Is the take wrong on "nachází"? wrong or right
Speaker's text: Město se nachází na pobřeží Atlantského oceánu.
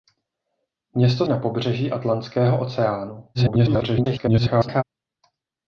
wrong